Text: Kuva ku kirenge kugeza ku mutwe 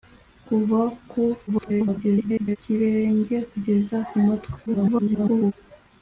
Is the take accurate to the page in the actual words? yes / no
no